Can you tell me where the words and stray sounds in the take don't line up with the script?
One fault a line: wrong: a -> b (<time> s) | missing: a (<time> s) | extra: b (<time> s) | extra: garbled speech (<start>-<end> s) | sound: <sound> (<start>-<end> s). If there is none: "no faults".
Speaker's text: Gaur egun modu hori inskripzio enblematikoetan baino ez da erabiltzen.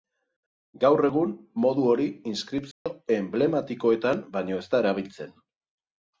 sound: dropout (2.7-2.9 s)